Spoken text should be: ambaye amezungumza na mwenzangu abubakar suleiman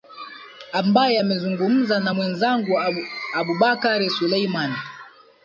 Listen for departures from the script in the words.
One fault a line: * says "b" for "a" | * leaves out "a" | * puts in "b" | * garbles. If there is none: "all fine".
all fine